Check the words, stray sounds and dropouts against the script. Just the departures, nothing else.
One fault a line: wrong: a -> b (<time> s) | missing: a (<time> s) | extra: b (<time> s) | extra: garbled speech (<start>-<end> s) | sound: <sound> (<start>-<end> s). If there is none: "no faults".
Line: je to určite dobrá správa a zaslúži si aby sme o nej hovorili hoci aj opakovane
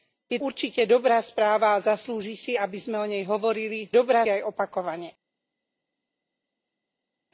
missing: to (0.4 s)
wrong: hoci -> dobrá (3.9 s)